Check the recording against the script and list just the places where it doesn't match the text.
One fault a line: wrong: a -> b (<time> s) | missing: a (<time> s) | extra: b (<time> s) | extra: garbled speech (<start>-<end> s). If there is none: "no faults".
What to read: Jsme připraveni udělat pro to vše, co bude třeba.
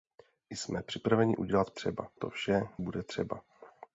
wrong: pro -> třeba (1.7 s)
missing: co (2.6 s)